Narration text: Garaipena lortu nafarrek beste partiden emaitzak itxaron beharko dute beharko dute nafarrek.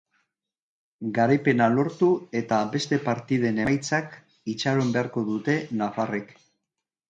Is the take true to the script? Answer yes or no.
no